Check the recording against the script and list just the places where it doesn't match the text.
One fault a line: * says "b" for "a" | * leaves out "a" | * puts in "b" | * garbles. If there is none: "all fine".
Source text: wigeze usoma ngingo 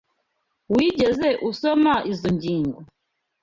* puts in "izoi"